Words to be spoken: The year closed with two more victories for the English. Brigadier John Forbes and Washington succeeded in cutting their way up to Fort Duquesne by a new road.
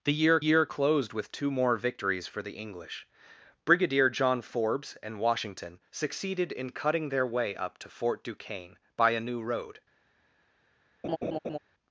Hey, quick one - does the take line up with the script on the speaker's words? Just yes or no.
no